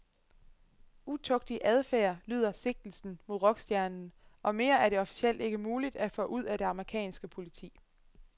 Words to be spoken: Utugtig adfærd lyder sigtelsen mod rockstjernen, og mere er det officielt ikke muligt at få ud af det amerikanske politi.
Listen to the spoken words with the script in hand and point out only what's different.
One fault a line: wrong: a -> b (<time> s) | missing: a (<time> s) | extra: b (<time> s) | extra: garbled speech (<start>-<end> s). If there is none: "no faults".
no faults